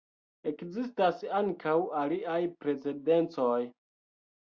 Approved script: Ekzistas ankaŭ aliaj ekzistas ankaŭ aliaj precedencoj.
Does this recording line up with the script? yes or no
no